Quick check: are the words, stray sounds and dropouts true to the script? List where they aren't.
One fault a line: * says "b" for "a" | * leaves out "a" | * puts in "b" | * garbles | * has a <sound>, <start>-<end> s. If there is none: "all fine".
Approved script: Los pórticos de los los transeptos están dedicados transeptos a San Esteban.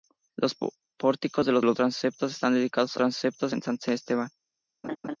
* has a laugh, 4.8-5.2 s